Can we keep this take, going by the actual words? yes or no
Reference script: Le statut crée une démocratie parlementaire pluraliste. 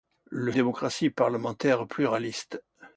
no